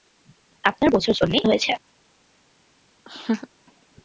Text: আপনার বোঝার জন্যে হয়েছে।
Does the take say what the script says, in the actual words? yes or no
yes